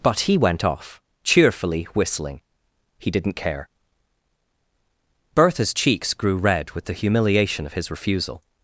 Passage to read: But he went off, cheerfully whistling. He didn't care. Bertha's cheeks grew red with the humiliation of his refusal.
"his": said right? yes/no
yes